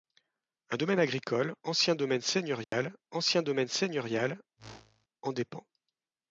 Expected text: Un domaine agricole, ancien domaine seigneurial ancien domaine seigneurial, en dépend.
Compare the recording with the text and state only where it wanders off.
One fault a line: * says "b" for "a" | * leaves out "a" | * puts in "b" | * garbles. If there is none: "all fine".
all fine